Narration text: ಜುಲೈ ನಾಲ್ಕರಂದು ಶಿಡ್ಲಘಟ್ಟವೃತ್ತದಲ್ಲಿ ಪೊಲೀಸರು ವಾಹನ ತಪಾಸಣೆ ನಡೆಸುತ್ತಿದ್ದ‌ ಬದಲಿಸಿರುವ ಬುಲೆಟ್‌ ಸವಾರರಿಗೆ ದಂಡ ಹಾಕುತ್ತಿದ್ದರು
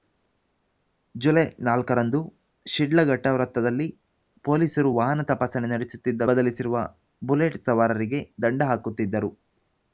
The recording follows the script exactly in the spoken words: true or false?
true